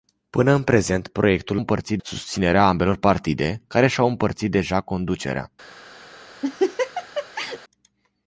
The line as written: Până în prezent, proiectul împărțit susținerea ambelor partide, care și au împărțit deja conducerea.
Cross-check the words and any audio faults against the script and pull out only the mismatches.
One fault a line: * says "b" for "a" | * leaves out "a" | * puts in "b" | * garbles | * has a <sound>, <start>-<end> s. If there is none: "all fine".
* has a laugh, 6.4-7.6 s